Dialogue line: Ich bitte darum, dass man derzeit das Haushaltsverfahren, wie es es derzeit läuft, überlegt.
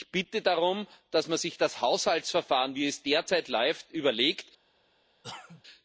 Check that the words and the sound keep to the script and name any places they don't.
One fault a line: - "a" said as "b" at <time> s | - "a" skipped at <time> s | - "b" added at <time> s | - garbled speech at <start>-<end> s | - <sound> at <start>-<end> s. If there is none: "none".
- "derzeit" said as "sich" at 1.4 s
- "es" skipped at 3.0 s
- cough at 5.2-5.6 s